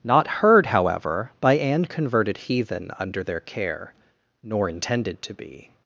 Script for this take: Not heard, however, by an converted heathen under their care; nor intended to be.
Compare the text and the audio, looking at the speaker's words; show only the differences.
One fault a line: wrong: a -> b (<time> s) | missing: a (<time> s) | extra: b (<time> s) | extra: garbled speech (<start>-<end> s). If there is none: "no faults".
no faults